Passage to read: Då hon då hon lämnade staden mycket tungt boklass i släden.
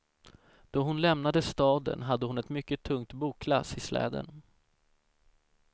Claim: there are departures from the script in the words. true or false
true